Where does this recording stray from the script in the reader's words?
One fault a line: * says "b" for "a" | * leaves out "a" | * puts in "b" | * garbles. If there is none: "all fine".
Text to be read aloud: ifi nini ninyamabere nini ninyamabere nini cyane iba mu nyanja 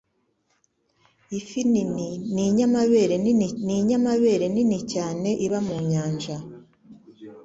all fine